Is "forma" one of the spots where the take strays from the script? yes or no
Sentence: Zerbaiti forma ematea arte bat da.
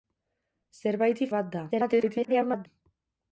yes